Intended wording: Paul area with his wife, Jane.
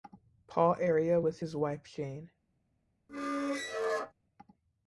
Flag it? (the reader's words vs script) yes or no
no